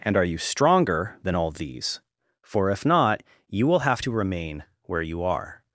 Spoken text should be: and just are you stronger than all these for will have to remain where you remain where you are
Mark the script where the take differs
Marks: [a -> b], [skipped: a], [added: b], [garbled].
and [skipped: just] are you stronger than all these for [added: if not you] will have to remain where you [skipped: remain where you] are